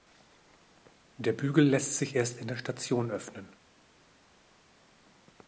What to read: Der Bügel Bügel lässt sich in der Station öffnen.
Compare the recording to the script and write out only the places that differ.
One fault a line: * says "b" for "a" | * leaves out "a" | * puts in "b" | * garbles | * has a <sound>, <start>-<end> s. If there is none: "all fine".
* leaves out "Bügel"
* puts in "erst"